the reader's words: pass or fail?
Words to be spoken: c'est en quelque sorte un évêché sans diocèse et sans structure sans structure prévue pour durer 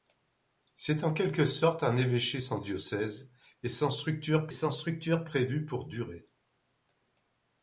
pass